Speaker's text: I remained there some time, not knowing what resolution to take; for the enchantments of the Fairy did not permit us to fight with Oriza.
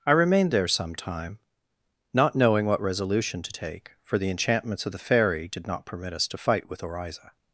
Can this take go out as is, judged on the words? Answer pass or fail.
pass